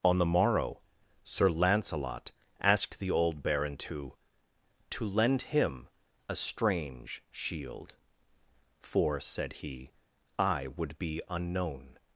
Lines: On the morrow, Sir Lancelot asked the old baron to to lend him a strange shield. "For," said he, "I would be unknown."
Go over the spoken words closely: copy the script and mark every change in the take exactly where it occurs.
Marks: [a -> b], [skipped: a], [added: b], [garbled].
On the morrow, Sir Lancelot asked the old baron to to lend him a strange shield. "For," said he, "I would be unknown."